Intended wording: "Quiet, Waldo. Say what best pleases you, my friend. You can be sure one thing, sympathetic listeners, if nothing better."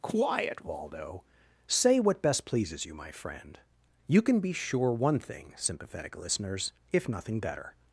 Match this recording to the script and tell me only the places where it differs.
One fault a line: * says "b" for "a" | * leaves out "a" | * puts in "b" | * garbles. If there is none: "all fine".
all fine